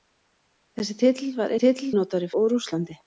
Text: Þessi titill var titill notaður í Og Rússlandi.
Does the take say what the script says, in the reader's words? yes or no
yes